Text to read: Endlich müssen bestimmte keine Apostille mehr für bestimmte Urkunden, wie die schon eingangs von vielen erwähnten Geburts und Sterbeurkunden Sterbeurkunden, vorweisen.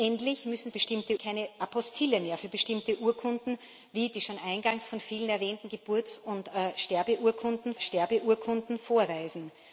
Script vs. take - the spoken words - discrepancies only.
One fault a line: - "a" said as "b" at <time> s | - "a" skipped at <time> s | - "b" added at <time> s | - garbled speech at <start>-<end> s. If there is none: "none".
none